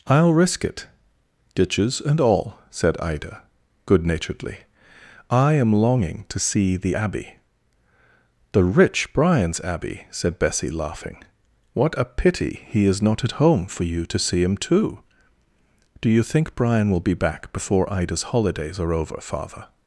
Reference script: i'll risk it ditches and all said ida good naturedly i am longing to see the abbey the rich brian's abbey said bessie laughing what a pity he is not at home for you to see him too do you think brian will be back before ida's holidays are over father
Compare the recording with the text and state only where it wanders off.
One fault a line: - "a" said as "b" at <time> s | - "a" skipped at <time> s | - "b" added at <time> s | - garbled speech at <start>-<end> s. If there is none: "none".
none